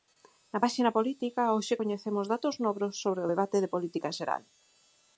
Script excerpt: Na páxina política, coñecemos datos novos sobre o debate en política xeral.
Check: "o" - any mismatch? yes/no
no